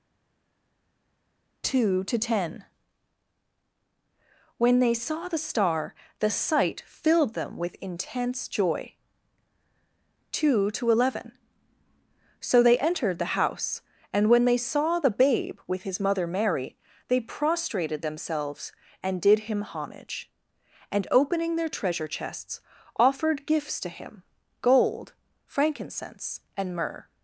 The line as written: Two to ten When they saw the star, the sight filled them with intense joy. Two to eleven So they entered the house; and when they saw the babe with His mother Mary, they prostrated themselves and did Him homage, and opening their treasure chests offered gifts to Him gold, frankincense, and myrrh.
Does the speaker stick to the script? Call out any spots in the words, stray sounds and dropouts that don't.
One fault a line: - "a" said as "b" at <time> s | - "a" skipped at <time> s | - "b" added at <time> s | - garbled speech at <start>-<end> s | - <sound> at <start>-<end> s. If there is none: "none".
none